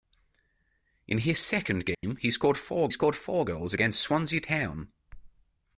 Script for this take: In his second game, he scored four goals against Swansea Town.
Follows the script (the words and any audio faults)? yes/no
no